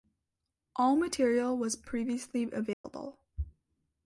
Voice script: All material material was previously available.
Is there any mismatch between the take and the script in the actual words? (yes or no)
yes